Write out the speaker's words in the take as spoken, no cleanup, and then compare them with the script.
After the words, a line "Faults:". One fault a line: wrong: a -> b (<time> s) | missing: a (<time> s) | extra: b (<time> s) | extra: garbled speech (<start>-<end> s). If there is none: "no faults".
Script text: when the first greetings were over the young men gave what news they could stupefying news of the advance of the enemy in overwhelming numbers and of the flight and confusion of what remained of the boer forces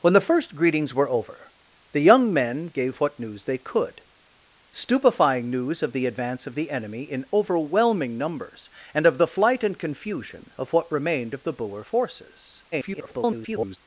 when the first greetings were over the young men gave what news they could stupefying news of the advance of the enemy in overwhelming numbers and of the flight and confusion of what remained of the boer forces [garbled]
Faults:
extra: garbled speech (12.7-13.8 s)